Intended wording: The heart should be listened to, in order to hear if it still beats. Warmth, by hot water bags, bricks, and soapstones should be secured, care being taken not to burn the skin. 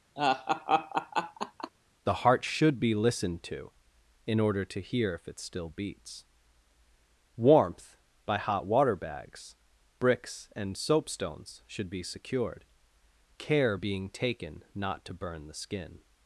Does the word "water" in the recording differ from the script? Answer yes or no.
no